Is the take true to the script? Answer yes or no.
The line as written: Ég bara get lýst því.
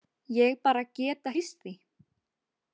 yes